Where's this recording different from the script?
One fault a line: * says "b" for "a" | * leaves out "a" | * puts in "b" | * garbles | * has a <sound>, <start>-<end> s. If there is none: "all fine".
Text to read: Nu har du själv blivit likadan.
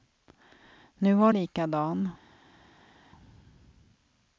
* leaves out "du själv blivit"